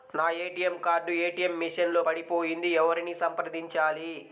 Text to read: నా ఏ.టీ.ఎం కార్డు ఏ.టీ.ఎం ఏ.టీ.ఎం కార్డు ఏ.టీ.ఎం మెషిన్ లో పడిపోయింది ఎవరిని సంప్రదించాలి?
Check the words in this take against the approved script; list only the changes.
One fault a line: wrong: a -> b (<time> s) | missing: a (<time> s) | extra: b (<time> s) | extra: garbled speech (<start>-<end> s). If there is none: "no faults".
missing: ఏ.టీ.ఎం కార్డు ఏ.టీ.ఎం (1.5 s)